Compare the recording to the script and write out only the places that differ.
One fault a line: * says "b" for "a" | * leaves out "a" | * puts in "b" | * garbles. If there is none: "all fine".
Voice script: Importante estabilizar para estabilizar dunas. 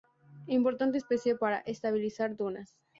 * says "especie" for "estabilizar"